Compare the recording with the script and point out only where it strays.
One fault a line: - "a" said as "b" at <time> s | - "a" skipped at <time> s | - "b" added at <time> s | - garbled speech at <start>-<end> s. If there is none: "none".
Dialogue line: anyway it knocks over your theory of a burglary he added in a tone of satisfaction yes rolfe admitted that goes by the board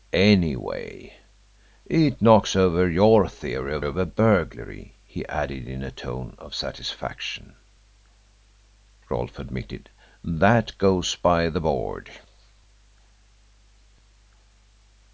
- "of" added at 3.9 s
- "yes" skipped at 7.5 s